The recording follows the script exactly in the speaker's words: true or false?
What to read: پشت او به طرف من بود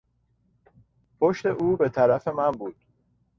true